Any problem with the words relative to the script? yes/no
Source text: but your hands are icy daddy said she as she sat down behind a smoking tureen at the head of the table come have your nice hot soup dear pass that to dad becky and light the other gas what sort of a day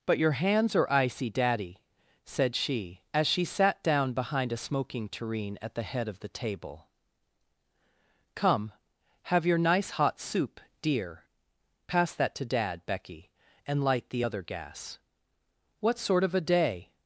no